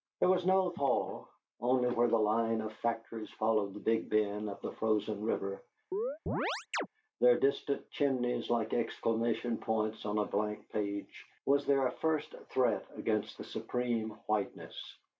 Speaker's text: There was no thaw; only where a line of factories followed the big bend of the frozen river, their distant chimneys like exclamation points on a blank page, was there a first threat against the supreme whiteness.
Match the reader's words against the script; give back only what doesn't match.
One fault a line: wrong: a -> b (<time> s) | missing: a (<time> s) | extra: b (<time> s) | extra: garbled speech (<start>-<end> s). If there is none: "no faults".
wrong: a -> the (2.1 s)